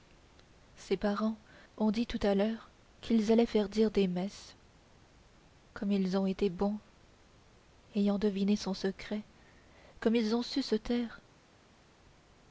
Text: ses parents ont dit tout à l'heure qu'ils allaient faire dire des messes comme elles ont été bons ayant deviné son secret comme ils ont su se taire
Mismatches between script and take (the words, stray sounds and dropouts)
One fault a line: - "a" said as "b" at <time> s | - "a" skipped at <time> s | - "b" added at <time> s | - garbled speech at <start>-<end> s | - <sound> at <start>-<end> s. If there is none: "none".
- "elles" said as "ils" at 5.9 s